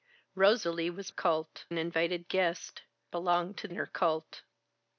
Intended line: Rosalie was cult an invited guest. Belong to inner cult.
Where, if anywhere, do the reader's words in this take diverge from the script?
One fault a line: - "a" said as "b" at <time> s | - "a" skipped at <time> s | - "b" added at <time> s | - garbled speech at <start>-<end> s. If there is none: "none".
none